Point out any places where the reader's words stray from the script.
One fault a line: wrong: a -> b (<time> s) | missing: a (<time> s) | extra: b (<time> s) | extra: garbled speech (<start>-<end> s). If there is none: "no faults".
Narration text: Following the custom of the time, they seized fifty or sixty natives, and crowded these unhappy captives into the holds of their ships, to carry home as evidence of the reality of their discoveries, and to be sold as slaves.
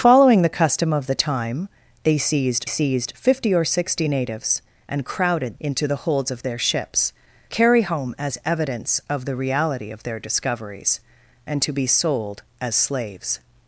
extra: seized (2.6 s)
missing: these unhappy captives (5.6 s)
missing: to (7.1 s)